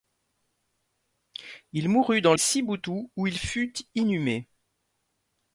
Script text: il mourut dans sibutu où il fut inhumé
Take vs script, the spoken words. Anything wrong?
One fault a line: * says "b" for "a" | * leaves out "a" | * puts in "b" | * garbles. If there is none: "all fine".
all fine